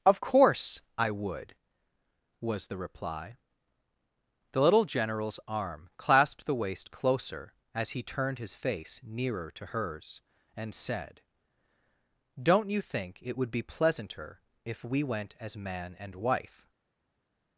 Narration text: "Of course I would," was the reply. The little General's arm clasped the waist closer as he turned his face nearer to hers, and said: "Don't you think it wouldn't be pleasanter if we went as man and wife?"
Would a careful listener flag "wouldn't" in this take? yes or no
yes